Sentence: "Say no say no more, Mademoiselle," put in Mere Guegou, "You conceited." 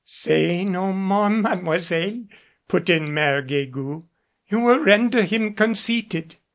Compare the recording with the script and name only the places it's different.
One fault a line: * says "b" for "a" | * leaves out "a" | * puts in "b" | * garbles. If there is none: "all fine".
* leaves out "say no"
* puts in "will render him"